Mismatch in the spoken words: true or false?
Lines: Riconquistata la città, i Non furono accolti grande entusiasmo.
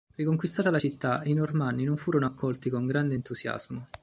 true